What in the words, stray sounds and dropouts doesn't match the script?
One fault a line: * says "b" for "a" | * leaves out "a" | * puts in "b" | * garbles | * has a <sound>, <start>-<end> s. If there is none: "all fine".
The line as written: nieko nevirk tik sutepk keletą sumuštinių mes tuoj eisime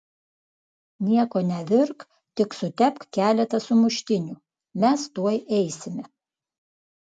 all fine